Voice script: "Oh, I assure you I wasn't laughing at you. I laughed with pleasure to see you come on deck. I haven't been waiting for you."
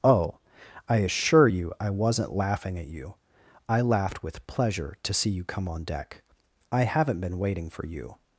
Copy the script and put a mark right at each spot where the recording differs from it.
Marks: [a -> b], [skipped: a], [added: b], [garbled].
"Oh, I assure you I wasn't laughing at you. I laughed with pleasure to see you come on deck. I haven't been waiting for you."